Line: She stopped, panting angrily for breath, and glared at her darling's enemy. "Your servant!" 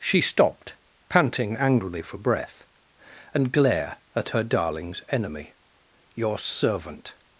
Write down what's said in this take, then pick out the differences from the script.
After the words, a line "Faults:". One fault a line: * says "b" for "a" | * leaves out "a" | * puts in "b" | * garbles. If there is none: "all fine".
She stopped, panting angrily for breath, and glare at her darling's enemy. "Your servant!"
Faults:
* says "glare" for "glared"